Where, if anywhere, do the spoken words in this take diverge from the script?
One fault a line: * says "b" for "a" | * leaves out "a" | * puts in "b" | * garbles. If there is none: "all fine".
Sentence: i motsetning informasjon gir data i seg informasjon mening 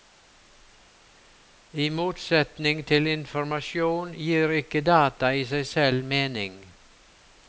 * puts in "til"
* puts in "ikke"
* says "selv" for "informasjon"